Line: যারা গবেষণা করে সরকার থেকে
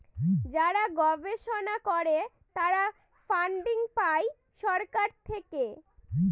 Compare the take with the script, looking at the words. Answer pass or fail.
fail